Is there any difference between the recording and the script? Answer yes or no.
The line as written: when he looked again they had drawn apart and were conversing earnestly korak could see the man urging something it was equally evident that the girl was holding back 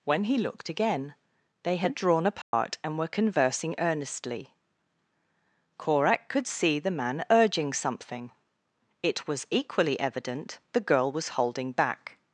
yes